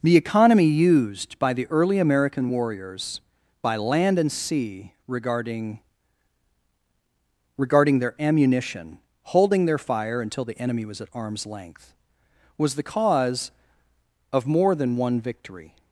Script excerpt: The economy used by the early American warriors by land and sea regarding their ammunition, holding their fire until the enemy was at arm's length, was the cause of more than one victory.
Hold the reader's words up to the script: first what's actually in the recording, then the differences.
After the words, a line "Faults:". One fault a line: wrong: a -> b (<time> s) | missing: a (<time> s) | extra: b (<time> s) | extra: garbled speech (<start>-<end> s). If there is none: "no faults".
The economy used by the early American warriors by land and sea regarding regarding their ammunition, holding their fire until the enemy was at arm's length, was the cause of more than one victory.
Faults:
extra: regarding (7.6 s)